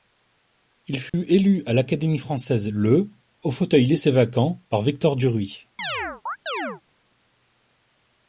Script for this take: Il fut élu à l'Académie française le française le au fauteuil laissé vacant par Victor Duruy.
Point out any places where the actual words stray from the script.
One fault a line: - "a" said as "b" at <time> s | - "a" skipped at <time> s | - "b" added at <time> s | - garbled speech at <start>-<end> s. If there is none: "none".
- "française le" skipped at 3.1 s